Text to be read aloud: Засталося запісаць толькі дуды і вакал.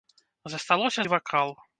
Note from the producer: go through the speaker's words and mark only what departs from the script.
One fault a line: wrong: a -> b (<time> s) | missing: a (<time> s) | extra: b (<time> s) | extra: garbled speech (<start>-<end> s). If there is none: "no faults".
missing: запісаць толькі дуды (1.1 s)